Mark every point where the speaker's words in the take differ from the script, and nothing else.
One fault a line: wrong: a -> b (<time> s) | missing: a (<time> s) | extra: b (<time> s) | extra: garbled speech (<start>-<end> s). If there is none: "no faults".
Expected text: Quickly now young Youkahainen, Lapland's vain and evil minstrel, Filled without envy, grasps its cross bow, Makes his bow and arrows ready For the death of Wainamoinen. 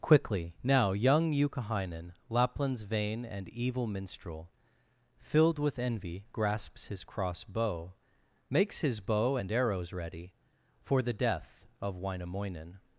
wrong: without -> with (5.6 s)
wrong: its -> his (6.9 s)